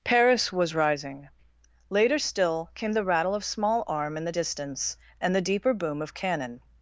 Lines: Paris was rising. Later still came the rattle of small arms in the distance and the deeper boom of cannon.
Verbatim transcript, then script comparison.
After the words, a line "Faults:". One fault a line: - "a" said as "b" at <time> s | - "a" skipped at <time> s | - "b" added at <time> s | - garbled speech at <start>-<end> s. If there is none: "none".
Paris was rising. Later still came the rattle of small arm in the distance and the deeper boom of cannon.
Faults:
- "arms" said as "arm" at 3.9 s